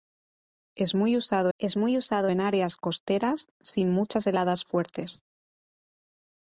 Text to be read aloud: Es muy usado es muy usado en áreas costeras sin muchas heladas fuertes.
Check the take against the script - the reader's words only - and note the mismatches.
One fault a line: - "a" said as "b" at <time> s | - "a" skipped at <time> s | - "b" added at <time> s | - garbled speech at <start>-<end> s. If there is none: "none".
none